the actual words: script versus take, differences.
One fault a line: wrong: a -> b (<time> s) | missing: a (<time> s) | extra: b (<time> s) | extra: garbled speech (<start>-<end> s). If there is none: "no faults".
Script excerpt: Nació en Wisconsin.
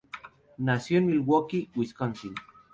extra: Milwaukee (1.1 s)